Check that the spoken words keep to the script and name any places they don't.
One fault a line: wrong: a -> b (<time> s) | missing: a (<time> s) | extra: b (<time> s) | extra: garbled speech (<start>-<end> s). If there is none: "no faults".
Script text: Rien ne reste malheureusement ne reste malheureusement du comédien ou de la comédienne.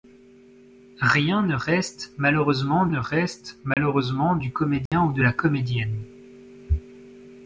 no faults